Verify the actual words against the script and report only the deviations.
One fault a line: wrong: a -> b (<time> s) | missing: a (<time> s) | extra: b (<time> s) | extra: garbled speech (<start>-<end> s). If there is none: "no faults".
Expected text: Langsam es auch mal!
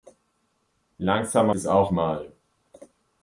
no faults